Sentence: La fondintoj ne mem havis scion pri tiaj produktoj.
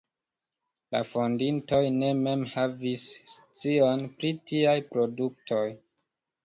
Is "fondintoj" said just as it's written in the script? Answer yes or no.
yes